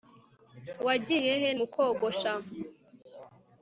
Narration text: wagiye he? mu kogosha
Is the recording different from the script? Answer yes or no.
no